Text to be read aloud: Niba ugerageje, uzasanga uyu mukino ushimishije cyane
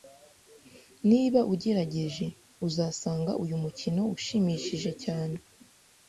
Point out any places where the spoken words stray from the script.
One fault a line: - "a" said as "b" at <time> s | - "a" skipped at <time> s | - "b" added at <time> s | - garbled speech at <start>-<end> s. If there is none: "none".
none